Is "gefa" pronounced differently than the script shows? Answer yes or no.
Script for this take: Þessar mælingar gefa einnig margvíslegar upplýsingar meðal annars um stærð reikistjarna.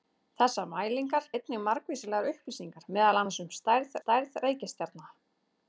yes